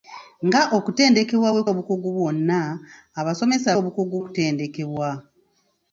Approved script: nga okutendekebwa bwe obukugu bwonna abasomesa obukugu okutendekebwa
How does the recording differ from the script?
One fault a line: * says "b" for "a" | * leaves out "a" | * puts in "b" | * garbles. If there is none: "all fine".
all fine